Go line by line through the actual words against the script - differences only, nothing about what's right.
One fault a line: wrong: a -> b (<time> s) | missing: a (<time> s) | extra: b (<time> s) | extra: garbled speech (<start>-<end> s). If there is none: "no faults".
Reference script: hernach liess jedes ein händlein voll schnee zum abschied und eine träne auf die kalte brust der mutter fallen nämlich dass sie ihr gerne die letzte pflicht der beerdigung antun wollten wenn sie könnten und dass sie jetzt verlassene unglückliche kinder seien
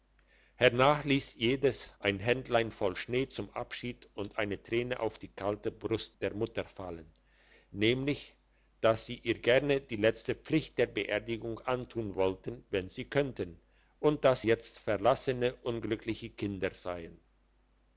missing: sie (14.4 s)